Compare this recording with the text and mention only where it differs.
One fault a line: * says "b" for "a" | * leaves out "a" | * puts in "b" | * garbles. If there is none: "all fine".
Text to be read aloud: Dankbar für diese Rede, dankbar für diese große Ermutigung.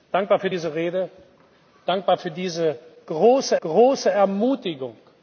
* puts in "große"